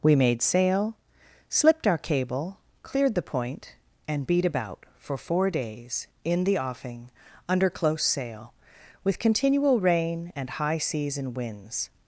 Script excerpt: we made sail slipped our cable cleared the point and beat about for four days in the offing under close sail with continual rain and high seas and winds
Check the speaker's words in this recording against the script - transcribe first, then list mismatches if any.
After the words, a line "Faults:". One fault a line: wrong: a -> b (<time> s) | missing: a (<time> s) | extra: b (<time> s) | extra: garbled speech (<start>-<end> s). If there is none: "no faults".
we made sail slipped our cable cleared the point and beat about for four days in the offing under close sail with continual rain and high seas and winds
Faults:
no faults